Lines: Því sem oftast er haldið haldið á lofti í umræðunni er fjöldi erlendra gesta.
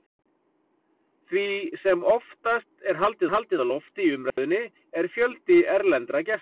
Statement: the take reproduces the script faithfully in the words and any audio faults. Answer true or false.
false